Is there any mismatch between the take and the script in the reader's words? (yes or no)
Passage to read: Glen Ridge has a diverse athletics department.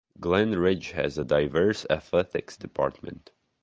no